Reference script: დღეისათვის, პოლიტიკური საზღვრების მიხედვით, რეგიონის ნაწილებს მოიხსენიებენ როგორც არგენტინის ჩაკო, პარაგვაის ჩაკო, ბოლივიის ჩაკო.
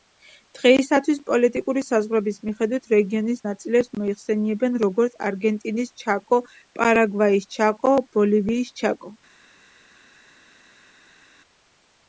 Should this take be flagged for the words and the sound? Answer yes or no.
no